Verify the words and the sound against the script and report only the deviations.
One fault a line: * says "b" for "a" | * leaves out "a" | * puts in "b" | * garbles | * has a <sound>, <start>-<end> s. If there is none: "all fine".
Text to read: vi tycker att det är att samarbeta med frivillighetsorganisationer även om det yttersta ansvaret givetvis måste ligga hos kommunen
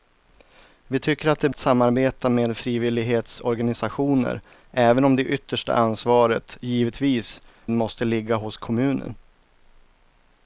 all fine